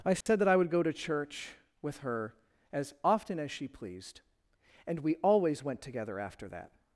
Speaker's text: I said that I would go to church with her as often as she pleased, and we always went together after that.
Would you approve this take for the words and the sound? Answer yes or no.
no